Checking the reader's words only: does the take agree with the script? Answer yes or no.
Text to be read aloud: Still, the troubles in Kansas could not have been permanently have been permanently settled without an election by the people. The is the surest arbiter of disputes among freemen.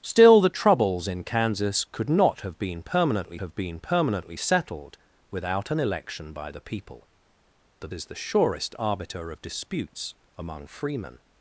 yes